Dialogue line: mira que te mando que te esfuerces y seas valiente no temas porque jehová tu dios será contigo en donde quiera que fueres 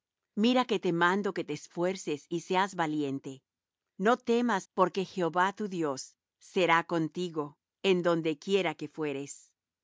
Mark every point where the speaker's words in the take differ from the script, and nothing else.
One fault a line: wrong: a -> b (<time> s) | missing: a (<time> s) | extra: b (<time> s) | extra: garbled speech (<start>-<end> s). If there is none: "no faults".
no faults